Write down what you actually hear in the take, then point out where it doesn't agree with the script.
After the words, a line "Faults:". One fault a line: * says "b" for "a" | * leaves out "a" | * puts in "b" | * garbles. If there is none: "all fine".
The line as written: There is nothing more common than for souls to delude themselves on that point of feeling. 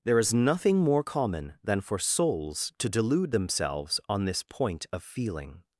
There is nothing more common than for souls to delude themselves on this point of feeling.
Faults:
* says "this" for "that"